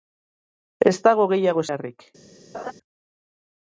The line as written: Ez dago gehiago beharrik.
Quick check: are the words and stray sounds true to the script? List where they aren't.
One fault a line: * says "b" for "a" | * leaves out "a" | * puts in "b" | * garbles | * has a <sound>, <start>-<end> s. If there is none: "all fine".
* has a laugh, 2.5-2.7 s